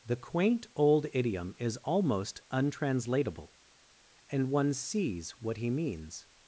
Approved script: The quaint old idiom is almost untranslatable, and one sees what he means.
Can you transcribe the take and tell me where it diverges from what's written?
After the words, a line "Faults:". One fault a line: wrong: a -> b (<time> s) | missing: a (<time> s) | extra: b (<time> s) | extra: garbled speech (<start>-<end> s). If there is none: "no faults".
The quaint old idiom is almost untranslatable, and one sees what he means.
Faults:
no faults